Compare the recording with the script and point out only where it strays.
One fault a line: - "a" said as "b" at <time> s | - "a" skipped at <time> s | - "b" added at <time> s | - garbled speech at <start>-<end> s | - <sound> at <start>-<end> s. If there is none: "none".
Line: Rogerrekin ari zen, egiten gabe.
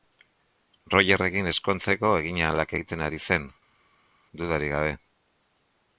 - "ezkontzeko eginahalak egiten" added at 1.5 s
- "egiten" said as "dudarik" at 4.4 s